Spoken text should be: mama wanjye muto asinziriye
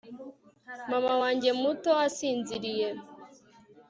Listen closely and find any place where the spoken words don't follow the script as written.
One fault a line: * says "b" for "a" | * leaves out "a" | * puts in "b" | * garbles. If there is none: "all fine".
all fine